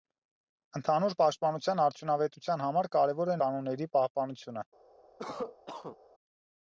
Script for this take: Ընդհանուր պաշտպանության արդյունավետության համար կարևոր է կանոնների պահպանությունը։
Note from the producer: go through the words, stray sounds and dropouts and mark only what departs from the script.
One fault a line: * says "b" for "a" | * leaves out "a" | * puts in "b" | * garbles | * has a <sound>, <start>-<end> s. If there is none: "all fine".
* has a cough, 5.2-6.0 s